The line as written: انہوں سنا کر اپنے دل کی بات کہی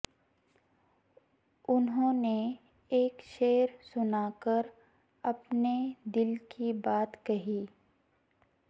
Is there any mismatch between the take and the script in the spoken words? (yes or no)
yes